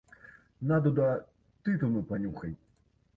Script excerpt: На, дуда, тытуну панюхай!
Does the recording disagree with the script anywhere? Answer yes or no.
no